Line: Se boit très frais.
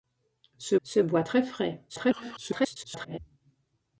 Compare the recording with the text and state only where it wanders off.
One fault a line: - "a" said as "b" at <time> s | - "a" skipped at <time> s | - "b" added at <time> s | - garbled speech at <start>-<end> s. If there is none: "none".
- "se" added at 0.8 s
- garbled speech at 1.9-3.2 s